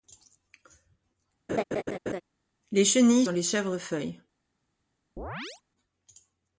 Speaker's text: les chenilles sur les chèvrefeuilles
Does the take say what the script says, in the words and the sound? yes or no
no